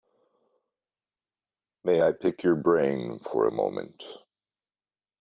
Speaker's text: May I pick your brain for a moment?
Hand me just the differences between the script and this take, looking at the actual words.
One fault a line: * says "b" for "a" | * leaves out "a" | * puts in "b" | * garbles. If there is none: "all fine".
all fine